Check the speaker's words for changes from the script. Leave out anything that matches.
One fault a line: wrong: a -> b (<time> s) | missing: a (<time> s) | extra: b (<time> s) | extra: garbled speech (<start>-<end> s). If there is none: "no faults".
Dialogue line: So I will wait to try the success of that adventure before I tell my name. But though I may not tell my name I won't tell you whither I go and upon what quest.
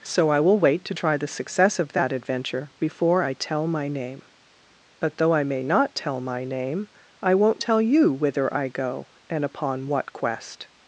no faults